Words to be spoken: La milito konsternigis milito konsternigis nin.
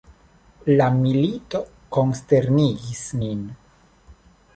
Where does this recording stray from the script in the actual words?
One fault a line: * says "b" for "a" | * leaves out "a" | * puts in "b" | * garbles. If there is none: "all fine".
* leaves out "milito konsternigis"